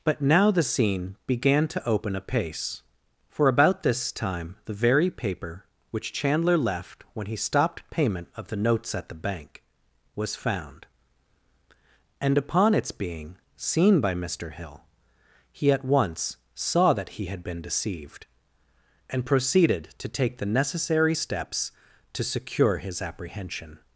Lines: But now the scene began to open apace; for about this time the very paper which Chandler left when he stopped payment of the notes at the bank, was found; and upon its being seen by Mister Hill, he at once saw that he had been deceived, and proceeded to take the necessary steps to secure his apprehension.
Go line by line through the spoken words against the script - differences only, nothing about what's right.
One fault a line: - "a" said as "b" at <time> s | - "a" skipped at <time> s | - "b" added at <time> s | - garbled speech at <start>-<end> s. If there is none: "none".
none